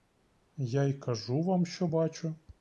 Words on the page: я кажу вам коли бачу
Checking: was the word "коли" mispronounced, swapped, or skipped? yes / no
yes